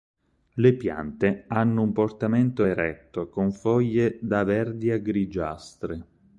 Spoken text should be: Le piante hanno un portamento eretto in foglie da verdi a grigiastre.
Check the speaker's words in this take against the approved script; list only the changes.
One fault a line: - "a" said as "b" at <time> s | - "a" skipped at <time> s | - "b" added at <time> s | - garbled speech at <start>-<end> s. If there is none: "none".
- "in" said as "con" at 3.3 s